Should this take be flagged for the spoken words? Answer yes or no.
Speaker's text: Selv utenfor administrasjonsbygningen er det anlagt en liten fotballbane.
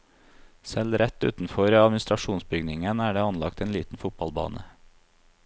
yes